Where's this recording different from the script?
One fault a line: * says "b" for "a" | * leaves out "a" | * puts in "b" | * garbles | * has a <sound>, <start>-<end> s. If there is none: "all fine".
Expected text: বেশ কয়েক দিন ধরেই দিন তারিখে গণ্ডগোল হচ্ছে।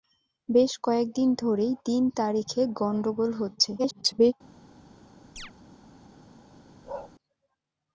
* garbles
* has a chirp, 5.4-5.5 s
* has a bark, 6.8-7.1 s